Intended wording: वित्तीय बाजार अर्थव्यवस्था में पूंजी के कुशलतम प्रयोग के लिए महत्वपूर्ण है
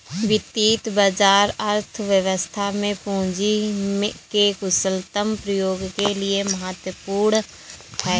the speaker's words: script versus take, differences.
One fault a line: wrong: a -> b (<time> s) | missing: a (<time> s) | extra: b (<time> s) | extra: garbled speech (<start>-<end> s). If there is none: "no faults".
no faults